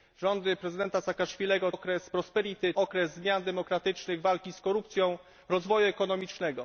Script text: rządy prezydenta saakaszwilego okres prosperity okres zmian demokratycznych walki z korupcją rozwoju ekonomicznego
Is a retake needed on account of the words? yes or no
no